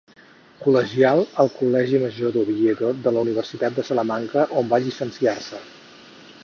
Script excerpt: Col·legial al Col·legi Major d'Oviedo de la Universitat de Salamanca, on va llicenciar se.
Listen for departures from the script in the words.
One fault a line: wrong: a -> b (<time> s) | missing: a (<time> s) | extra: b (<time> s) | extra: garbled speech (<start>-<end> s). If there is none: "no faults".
no faults